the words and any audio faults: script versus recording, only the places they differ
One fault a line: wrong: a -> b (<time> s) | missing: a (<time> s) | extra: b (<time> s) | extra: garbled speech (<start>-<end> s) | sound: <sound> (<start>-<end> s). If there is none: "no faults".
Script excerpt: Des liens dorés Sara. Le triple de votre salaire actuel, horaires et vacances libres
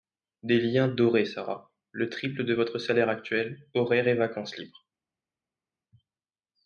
no faults